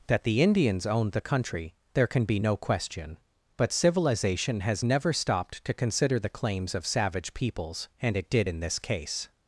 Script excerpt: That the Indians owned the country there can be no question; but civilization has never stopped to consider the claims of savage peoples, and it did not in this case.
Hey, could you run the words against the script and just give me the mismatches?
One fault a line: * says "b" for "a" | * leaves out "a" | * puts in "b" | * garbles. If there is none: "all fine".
* leaves out "not"